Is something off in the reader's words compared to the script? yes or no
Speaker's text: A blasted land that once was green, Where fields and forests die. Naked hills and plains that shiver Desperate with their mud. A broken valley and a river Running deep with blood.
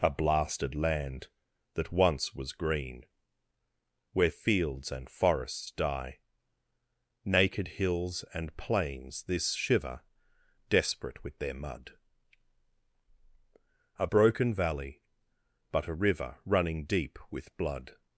yes